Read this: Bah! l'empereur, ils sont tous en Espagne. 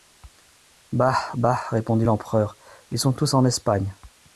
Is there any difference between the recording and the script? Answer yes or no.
yes